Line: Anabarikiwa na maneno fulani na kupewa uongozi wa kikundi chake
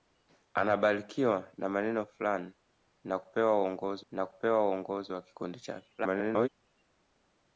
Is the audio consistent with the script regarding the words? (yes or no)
no